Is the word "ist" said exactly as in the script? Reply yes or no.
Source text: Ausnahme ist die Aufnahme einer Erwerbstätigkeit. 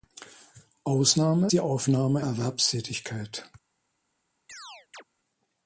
no